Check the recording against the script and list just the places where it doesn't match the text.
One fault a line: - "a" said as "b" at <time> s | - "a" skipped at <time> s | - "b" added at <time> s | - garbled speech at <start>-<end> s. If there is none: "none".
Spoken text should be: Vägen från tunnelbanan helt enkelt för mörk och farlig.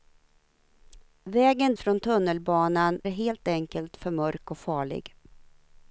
none